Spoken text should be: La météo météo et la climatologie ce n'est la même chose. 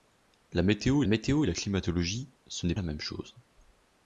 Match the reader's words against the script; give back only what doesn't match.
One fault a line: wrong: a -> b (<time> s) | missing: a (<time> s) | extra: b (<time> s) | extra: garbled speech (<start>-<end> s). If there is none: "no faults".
no faults